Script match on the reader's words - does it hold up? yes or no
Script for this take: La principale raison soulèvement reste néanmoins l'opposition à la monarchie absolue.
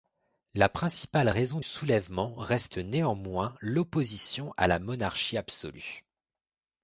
yes